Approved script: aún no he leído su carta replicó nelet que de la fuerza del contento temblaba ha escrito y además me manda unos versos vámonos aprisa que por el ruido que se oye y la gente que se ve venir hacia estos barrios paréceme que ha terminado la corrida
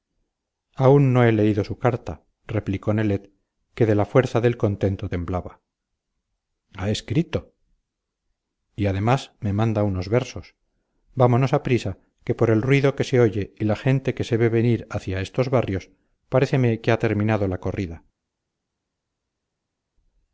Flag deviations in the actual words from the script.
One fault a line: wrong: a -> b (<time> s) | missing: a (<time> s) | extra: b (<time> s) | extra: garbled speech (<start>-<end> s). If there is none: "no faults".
no faults